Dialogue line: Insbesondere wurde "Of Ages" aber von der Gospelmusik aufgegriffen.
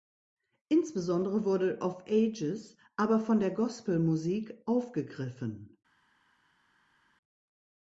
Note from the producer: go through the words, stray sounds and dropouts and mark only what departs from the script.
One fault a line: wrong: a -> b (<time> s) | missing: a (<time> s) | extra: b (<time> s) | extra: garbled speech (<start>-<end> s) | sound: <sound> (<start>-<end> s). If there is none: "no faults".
no faults